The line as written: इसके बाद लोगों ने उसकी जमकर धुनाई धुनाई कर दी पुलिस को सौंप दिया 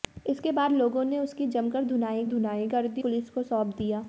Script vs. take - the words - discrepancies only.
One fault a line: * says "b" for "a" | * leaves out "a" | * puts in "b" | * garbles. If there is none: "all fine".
all fine